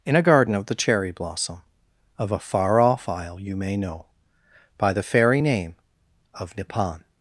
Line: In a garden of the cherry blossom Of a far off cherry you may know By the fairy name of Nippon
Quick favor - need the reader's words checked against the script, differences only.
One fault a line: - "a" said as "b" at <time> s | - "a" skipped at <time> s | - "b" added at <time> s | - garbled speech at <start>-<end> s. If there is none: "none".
- "cherry" said as "isle" at 3.1 s